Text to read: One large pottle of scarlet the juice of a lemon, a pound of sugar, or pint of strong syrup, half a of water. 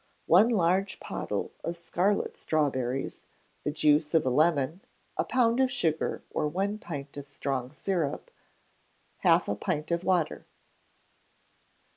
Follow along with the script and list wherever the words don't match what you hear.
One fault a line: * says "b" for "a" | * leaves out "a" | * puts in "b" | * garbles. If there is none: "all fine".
* puts in "strawberries"
* puts in "one"
* puts in "pint"